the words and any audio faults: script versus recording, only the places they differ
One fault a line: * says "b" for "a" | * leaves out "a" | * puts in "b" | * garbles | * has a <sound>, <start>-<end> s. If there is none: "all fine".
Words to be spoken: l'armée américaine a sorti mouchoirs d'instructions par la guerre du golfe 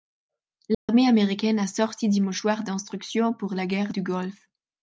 * has a dropout, 0.7-0.9 s
* puts in "des"
* says "pour" for "par"